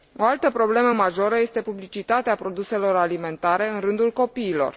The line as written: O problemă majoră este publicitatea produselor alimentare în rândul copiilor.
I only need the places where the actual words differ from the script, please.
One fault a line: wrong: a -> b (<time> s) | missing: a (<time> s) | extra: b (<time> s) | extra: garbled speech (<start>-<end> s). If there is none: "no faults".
extra: altă (0.2 s)